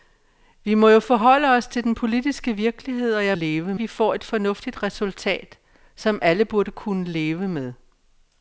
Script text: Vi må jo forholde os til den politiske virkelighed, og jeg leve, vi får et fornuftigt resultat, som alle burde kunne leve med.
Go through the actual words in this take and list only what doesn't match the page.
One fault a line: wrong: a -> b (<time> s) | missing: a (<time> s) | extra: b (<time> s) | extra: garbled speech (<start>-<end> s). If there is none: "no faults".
no faults